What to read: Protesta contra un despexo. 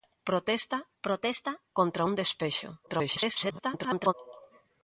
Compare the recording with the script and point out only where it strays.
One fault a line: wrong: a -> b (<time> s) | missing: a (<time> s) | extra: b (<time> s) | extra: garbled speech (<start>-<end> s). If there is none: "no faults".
extra: protesta (1.0 s)
extra: garbled speech (2.9-4.1 s)